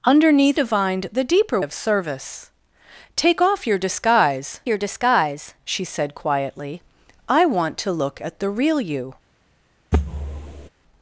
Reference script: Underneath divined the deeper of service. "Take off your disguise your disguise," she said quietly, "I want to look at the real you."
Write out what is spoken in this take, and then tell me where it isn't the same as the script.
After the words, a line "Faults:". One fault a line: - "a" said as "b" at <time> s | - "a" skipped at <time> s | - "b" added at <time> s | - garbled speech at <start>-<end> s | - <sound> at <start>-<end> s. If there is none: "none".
Underneath divined the deeper of service. "Take off your disguise your disguise," she said quietly, "I want to look at the real you."
Faults:
- thud at 9.9-10.7 s